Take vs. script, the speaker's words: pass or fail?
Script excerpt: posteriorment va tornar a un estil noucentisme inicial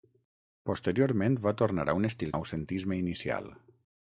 pass